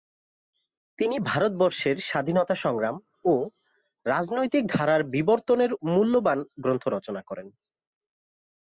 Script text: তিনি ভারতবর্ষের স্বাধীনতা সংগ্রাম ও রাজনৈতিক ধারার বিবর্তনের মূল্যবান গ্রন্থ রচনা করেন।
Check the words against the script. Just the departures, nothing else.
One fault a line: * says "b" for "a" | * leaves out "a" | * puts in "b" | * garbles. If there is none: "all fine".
all fine